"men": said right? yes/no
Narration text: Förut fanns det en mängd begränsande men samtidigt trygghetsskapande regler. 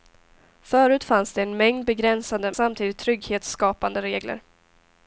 no